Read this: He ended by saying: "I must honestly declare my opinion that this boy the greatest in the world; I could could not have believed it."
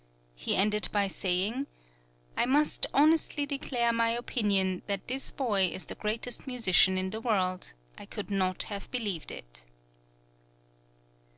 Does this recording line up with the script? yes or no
no